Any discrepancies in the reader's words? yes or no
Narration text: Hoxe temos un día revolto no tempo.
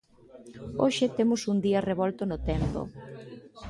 no